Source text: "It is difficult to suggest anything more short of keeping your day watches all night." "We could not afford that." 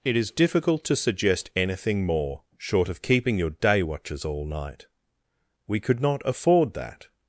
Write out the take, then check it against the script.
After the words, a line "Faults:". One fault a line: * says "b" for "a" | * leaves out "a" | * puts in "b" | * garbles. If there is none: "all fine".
"It is difficult to suggest anything more short of keeping your day watches all night." "We could not afford that."
Faults:
all fine